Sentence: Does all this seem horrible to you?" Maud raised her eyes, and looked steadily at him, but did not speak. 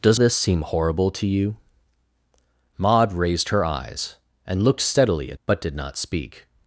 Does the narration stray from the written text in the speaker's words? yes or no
yes